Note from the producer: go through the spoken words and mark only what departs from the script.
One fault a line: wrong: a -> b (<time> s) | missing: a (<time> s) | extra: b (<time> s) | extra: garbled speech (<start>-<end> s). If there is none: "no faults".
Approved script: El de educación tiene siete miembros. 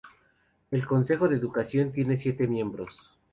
extra: consejo (0.9 s)